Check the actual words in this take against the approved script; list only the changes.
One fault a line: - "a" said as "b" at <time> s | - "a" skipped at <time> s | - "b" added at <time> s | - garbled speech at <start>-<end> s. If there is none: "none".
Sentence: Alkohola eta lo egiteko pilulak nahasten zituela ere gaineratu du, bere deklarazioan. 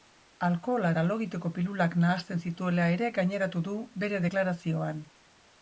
none